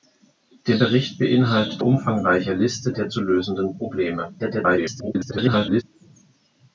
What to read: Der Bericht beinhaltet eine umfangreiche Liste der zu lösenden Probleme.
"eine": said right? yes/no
no